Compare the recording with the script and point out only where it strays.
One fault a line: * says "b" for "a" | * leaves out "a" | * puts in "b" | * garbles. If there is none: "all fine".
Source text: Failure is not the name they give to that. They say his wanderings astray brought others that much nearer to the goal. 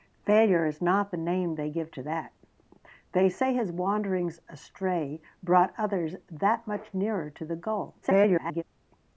* garbles